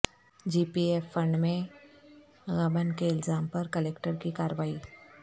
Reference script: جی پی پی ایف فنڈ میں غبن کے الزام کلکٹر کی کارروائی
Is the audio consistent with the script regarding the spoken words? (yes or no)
no